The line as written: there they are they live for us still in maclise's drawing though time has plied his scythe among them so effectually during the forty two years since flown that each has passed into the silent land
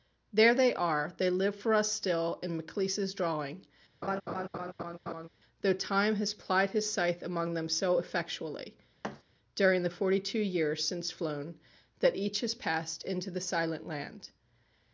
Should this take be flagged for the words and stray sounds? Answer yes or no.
yes